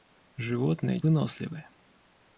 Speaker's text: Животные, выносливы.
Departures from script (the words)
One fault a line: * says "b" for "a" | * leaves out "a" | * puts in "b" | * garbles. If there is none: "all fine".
all fine